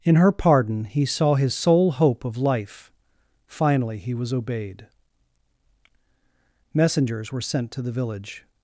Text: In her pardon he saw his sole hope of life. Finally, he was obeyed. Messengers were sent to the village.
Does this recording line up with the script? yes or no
yes